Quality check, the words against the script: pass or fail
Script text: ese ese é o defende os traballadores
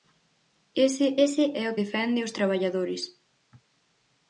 pass